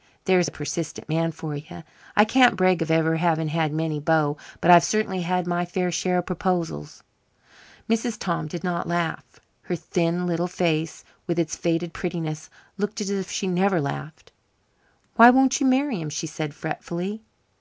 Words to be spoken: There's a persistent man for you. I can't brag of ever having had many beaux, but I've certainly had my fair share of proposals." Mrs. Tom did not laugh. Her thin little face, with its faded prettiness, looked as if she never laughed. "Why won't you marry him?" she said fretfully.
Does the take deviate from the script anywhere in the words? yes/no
no